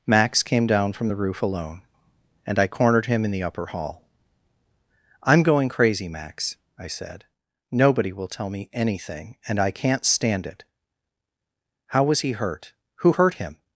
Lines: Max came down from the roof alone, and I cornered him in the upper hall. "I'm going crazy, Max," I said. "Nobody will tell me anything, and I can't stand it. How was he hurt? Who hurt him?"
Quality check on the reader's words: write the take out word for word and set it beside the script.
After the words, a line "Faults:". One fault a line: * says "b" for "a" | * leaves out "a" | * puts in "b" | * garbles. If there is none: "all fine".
Max came down from the roof alone, and I cornered him in the upper hall. "I'm going crazy, Max," I said. "Nobody will tell me anything, and I can't stand it. How was he hurt? Who hurt him?"
Faults:
all fine